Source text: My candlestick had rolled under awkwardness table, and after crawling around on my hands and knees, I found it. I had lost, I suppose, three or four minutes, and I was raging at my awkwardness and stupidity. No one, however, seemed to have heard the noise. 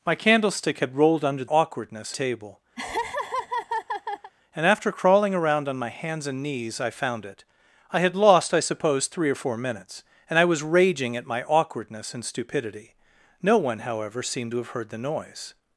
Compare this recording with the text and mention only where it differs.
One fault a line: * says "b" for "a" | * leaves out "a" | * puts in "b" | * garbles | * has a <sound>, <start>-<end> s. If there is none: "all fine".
* has a laugh, 2.8-4.3 s